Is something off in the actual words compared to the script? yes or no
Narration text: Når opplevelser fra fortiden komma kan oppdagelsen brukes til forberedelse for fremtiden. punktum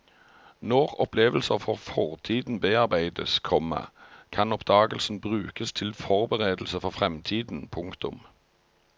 yes